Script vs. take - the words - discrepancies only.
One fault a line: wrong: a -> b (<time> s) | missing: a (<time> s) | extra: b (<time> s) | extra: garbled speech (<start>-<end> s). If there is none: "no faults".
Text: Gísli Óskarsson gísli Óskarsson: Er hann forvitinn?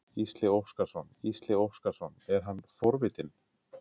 no faults